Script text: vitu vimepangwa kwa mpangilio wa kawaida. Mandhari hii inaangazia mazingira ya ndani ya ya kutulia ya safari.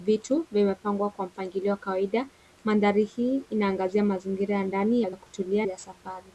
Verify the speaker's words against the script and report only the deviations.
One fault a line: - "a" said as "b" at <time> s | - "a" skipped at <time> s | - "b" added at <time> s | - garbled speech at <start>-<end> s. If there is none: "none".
none